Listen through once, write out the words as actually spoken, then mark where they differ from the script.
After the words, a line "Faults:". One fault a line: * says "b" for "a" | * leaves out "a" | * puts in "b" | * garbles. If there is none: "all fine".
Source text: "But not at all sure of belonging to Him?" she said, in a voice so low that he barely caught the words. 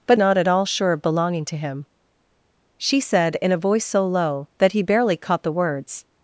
"But not at all sure of belonging to Him?" she said, in a voice so low that he barely caught the words.
Faults:
all fine